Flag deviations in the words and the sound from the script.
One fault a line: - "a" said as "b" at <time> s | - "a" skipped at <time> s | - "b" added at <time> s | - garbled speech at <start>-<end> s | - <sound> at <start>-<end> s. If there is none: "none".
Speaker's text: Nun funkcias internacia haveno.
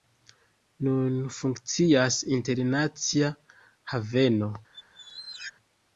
- squeak at 4.7-5.5 s